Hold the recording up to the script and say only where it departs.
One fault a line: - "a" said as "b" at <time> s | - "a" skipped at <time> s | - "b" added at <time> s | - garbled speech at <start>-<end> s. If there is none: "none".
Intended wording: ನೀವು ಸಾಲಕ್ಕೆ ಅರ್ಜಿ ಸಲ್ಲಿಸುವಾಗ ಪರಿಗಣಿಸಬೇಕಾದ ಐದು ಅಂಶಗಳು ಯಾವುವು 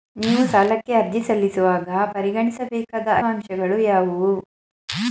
- "ಐದು" skipped at 3.1 s